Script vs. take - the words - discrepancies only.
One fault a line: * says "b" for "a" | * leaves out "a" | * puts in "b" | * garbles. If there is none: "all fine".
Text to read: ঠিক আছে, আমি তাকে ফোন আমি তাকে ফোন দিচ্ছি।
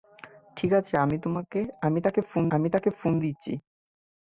all fine